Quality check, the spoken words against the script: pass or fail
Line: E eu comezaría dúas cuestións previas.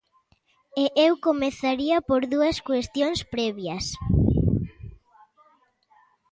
fail